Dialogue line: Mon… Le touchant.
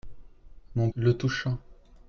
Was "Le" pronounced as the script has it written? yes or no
yes